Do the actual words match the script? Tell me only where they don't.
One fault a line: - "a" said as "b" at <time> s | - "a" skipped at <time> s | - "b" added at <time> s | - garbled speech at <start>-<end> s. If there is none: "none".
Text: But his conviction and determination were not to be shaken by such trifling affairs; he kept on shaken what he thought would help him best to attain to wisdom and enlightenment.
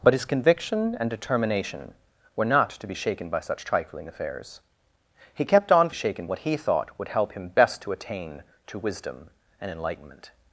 none